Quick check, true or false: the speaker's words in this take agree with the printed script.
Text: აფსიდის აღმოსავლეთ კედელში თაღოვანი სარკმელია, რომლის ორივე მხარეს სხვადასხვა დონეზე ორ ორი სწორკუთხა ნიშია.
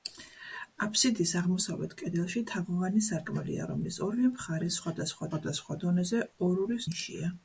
false